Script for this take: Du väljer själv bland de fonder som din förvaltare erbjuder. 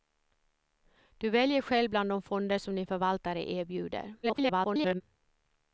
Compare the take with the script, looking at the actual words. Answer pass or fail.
fail